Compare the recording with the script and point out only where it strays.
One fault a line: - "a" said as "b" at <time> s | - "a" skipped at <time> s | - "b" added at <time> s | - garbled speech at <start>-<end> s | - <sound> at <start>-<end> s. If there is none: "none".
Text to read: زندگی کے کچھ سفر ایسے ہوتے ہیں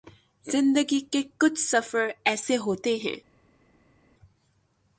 none